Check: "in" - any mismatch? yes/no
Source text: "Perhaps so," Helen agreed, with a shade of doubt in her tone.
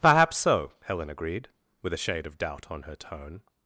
yes